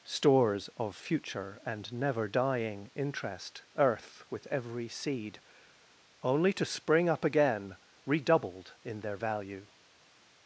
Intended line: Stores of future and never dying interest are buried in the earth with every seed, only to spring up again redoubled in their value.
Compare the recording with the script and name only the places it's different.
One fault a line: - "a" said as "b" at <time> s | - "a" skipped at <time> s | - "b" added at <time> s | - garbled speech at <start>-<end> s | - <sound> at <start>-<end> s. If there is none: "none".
- "are buried in the" skipped at 3.6 s